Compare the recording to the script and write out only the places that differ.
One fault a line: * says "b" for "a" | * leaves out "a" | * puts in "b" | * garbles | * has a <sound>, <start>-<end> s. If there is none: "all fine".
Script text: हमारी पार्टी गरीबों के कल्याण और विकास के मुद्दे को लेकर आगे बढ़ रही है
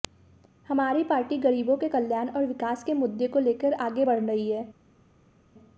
all fine